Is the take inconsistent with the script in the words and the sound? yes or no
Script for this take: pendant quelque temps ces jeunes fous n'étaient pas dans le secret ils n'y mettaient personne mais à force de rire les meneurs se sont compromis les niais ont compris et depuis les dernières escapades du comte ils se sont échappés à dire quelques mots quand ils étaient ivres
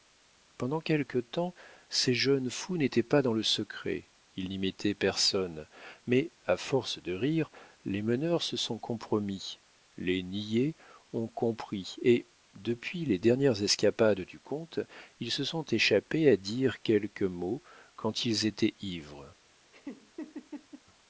yes